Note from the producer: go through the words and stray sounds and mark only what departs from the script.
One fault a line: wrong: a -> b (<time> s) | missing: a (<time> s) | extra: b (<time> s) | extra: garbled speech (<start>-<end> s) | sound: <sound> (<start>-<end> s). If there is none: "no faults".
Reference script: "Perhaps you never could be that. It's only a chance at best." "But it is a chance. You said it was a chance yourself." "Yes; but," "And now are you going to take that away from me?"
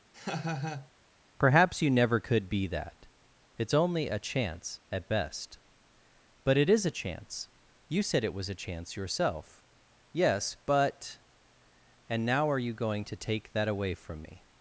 sound: laugh (0.1-0.9 s)